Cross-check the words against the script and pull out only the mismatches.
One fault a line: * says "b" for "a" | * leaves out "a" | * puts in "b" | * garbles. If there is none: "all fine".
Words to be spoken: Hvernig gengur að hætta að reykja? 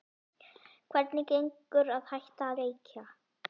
* leaves out "að"